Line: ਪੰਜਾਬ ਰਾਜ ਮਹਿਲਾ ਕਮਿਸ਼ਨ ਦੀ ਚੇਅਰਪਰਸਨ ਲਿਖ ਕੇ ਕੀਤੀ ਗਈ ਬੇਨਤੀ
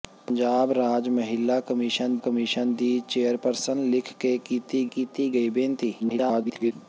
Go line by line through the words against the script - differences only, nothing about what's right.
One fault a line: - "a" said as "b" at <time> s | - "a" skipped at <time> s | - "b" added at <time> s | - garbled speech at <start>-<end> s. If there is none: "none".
- "ਕਮਿਸ਼ਨ" added at 2.2 s
- "ਕੀਤੀ" added at 4.9 s
- garbled speech at 6.0-6.7 s